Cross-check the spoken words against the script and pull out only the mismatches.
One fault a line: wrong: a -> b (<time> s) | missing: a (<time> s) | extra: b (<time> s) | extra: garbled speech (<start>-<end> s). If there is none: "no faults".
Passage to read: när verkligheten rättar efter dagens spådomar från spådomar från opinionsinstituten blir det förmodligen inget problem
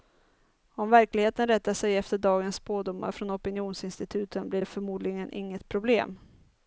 wrong: när -> om (0.7 s)
extra: sig (1.7 s)
missing: spådomar från (3.3 s)